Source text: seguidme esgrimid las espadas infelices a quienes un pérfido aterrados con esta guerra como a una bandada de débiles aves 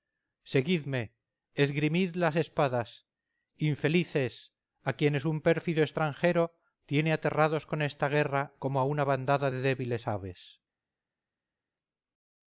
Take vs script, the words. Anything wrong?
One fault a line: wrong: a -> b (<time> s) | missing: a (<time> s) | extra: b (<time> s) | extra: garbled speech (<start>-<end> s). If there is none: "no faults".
extra: extranjero tiene (5.8 s)